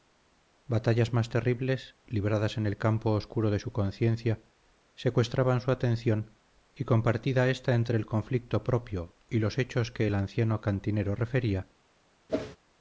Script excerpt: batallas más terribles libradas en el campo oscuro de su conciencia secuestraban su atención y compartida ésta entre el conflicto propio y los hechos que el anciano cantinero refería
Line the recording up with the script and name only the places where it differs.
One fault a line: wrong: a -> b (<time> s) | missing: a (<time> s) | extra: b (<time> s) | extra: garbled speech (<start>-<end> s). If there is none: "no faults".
no faults